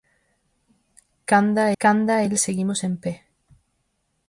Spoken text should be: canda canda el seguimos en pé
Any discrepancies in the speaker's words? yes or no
no